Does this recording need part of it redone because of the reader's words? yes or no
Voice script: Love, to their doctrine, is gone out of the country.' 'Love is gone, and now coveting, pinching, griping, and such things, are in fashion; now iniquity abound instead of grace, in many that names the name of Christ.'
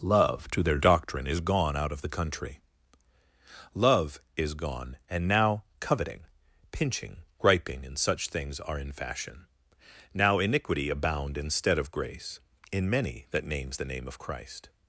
no